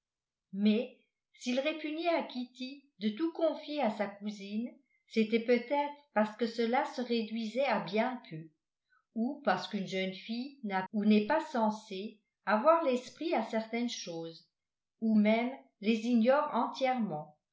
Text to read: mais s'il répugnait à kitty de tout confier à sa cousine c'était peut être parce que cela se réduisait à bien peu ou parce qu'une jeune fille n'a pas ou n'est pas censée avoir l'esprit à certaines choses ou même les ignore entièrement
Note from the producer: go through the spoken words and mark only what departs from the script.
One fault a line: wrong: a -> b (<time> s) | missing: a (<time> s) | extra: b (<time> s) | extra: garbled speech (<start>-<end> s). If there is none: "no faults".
missing: pas (10.8 s)